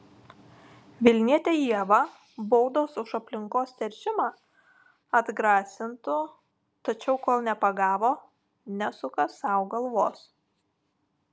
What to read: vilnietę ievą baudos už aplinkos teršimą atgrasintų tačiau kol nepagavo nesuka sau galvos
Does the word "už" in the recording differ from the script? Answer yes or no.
no